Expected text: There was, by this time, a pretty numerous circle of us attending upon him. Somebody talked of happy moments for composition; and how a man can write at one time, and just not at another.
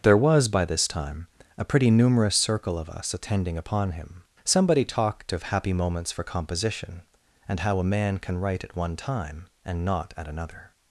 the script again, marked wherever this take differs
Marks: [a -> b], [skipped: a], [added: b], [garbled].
There was, by this time, a pretty numerous circle of us attending upon him. Somebody talked of happy moments for composition; and how a man can write at one time, and [skipped: just] not at another.